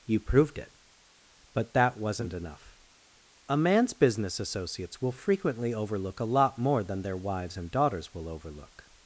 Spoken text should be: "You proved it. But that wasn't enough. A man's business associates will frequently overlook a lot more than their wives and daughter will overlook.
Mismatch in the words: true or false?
true